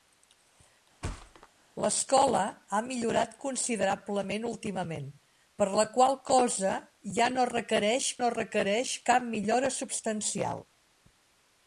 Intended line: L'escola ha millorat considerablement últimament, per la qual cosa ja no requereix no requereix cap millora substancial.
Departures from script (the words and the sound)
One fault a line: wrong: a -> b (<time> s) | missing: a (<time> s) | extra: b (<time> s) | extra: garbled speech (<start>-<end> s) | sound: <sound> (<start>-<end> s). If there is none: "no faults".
sound: thud (1.0-1.5 s)